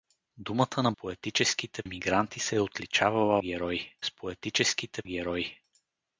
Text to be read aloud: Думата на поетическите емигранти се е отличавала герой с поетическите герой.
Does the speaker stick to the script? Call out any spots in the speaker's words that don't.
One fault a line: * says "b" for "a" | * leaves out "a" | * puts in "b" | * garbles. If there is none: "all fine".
all fine